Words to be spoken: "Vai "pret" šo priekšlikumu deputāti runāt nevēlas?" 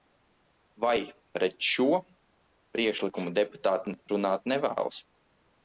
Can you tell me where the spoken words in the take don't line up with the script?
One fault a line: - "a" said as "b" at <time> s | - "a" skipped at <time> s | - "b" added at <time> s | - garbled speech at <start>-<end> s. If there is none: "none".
none